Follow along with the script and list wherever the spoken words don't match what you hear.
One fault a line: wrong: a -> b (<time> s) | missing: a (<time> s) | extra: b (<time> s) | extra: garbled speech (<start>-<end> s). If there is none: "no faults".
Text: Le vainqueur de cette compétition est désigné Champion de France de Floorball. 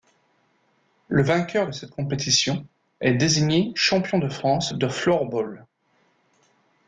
no faults